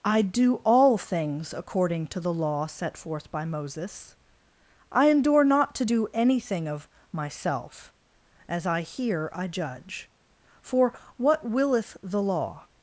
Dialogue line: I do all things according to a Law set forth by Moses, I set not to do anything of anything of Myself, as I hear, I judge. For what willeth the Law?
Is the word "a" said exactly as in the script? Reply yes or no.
no